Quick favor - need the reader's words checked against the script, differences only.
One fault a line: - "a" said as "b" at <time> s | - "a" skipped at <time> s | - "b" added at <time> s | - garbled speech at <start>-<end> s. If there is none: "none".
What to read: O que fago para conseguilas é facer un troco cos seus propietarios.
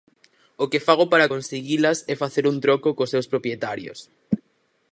none